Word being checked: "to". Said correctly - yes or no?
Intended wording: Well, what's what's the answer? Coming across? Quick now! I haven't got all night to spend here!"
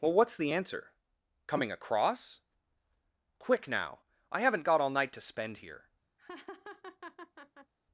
yes